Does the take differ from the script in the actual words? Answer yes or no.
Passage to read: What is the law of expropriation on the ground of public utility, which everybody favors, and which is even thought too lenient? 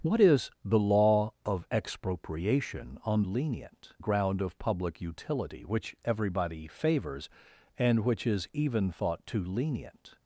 yes